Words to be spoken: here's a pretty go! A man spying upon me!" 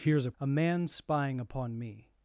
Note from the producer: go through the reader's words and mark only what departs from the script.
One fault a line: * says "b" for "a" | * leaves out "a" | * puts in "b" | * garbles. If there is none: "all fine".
* leaves out "pretty go"